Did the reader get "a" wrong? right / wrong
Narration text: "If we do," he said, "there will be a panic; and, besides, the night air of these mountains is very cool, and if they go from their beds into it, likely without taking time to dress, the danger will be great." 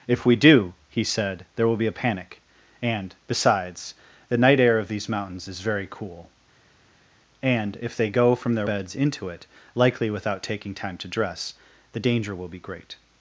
right